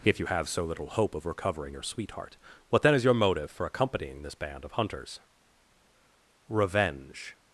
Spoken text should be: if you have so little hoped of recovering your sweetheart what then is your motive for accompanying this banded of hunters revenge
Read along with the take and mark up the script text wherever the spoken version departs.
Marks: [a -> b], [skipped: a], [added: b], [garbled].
if you have so little [hoped -> hope] of recovering your sweetheart what then is your motive for accompanying this [banded -> band] of hunters revenge